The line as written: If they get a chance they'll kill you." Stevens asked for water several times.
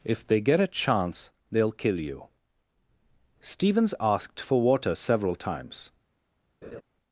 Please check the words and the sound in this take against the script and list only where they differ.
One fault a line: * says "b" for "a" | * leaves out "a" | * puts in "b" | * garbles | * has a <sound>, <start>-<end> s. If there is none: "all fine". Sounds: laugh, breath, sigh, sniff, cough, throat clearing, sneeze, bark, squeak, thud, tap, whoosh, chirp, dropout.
* has a laugh, 6.6-6.8 s